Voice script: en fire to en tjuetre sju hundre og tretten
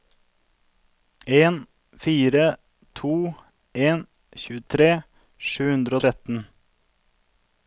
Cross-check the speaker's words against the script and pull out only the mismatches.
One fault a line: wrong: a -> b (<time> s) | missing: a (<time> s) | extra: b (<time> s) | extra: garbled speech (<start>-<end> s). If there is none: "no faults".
no faults